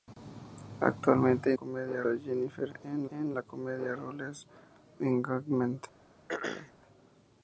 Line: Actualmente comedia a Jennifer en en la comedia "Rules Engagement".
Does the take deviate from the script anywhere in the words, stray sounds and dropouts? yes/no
yes